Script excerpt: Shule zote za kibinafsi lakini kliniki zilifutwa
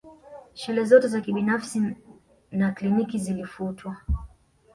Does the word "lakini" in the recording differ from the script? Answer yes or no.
yes